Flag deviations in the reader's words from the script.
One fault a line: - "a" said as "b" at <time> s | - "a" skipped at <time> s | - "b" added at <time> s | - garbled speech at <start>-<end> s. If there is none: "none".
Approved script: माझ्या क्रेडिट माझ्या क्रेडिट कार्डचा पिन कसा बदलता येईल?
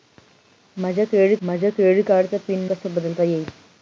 none